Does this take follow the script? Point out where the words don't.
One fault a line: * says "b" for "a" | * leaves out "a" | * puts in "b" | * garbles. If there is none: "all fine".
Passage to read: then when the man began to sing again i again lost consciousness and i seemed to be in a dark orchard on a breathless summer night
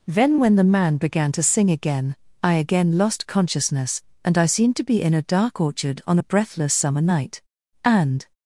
* puts in "and"